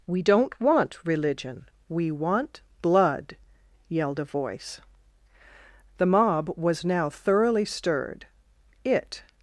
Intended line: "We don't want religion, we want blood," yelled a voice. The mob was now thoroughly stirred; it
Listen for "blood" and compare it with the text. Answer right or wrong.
right